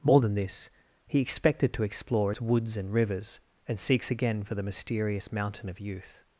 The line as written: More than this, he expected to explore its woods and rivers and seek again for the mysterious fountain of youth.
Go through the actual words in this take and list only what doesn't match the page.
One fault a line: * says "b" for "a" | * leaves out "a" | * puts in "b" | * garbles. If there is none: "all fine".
* says "seeks" for "seek"
* says "mountain" for "fountain"